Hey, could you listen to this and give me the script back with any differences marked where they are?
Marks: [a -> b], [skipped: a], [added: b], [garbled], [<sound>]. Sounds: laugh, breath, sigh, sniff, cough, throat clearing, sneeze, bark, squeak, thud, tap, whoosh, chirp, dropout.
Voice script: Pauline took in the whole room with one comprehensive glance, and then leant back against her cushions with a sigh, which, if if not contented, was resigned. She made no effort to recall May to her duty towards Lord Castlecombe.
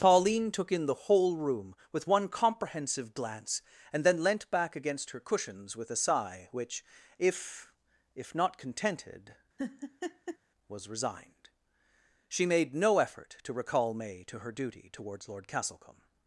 Pauline took in the whole room with one comprehensive glance, and then leant back against her cushions with a sigh, which, if if not contented, [laugh] was resigned. She made no effort to recall May to her duty towards Lord Castlecombe.